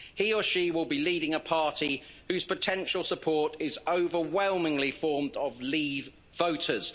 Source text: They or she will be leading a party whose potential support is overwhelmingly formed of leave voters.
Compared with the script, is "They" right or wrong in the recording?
wrong